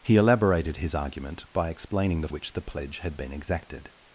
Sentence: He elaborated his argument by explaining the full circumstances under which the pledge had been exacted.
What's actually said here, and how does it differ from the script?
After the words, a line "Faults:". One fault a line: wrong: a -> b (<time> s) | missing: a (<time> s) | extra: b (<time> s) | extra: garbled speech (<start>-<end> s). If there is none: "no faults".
He elaborated his argument by explaining the which the pledge had been exacted.
Faults:
missing: full circumstances under (2.3 s)